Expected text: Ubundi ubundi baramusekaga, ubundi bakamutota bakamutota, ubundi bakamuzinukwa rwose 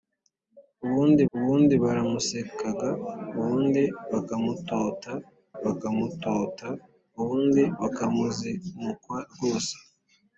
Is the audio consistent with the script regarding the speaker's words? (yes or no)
yes